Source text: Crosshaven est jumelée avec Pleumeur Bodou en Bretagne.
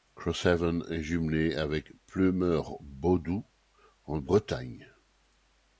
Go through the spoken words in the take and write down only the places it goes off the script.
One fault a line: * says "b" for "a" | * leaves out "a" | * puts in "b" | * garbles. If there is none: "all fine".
all fine